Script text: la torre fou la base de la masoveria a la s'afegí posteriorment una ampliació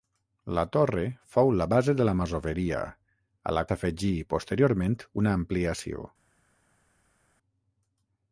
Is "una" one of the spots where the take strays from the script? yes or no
no